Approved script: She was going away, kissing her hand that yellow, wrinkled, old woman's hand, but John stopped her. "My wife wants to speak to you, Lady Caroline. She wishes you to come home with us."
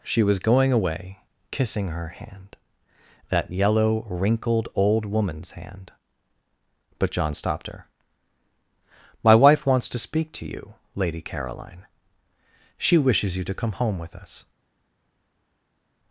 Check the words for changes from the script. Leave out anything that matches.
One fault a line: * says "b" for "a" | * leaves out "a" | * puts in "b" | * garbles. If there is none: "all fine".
all fine